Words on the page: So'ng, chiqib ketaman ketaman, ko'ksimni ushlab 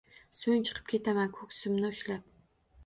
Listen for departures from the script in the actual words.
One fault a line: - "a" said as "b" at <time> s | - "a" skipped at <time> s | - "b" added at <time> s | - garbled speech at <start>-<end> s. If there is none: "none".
- "ketaman" skipped at 1.3 s